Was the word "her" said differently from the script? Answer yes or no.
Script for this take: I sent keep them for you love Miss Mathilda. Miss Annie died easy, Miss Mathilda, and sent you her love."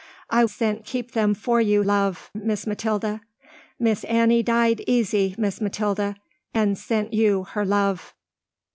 no